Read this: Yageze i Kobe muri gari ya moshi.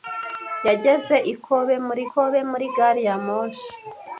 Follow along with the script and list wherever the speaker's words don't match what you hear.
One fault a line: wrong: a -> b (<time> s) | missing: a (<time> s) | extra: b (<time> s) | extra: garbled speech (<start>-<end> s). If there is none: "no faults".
extra: Kobe muri (2.1 s)